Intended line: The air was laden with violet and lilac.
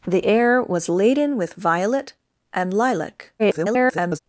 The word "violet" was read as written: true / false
true